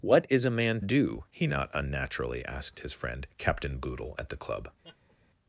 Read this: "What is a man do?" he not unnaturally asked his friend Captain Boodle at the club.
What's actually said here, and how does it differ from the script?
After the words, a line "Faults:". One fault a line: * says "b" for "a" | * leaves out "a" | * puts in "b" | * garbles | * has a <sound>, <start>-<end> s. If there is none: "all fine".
"What is a man do?" he not unnaturally asked his friend Captain Boodle at the club.
Faults:
* has a laugh, 4.8-5.2 s